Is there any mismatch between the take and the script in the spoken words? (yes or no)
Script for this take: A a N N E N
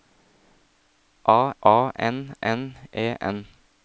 no